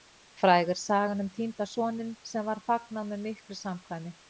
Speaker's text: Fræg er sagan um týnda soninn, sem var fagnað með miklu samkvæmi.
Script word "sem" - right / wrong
right